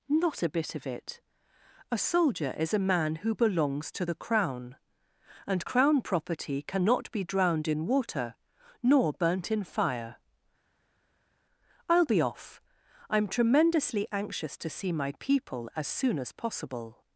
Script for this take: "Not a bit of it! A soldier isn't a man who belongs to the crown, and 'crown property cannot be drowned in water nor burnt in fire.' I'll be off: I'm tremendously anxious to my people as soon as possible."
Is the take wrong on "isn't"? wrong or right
wrong